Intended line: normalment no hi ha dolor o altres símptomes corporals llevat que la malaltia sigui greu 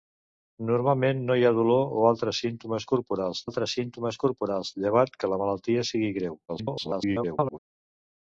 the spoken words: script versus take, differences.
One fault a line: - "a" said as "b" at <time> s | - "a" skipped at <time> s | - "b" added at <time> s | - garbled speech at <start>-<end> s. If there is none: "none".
- "altres símptomes corporals" added at 3.5 s
- garbled speech at 6.5-7.6 s